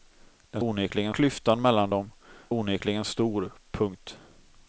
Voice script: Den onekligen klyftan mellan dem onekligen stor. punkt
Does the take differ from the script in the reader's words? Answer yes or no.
no